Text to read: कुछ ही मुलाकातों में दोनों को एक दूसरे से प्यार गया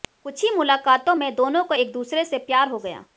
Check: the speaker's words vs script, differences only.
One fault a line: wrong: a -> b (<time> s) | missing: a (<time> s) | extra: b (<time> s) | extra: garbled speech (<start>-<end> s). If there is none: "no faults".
extra: हो (2.7 s)